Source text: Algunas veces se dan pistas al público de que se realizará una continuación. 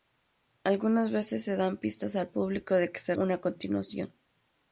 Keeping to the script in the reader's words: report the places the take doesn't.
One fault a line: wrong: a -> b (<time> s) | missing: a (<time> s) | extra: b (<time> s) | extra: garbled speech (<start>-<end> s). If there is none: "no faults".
missing: realizará (3.1 s)